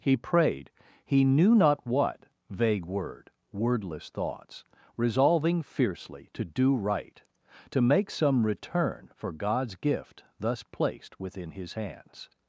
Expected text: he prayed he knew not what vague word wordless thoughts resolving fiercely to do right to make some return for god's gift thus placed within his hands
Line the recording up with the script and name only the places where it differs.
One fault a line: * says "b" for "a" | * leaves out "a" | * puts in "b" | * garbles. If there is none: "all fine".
all fine